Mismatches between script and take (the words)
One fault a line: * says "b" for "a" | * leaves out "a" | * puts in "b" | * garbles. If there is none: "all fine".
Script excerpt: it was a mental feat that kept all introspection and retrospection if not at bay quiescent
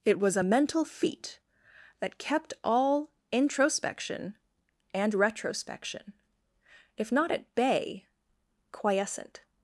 all fine